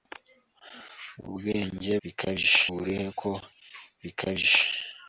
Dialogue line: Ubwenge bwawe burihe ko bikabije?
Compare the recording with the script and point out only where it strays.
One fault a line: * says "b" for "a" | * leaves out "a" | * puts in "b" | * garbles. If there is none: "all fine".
* says "bikabije" for "bwawe"